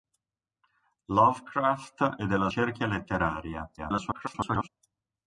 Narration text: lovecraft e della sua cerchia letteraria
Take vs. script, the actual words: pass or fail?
fail